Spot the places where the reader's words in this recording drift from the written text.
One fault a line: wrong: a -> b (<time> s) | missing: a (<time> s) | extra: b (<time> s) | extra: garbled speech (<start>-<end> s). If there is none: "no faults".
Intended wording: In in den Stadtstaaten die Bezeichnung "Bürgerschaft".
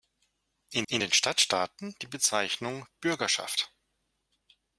no faults